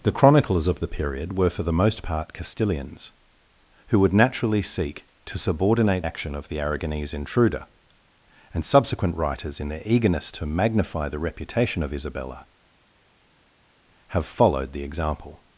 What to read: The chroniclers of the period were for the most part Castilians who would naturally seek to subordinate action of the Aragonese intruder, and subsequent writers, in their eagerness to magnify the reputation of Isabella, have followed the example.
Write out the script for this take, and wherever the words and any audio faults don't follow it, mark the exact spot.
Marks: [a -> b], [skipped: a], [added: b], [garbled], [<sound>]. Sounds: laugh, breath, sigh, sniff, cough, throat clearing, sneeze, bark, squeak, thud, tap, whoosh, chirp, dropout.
The chroniclers of the period were for the most part Castilians who would naturally seek to subordinate action of the Aragonese intruder, and subsequent writers, in their eagerness to magnify the reputation of Isabella, have followed the example.